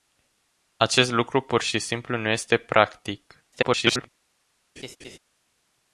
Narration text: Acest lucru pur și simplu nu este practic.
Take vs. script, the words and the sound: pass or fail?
fail